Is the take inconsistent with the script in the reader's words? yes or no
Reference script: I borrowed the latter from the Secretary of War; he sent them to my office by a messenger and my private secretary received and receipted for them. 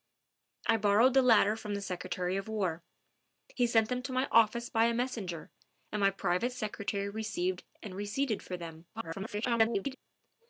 yes